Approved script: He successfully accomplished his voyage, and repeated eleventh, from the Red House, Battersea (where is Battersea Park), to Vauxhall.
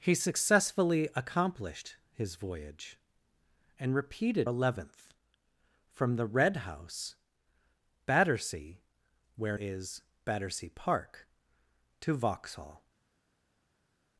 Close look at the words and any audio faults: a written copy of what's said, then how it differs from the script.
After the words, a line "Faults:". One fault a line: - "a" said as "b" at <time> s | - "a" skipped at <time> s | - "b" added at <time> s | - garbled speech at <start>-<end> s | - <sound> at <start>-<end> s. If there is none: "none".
He successfully accomplished his voyage, and repeated eleventh, from the Red House, Battersea (where is Battersea Park), to Vauxhall.
Faults:
none